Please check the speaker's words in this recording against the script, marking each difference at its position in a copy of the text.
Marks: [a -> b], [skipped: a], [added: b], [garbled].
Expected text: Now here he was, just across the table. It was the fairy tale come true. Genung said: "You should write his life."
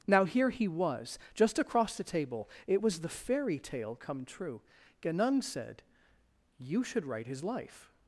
Now here he was, just across the table. It was the fairy tale come true. Genung said: "You should write his life."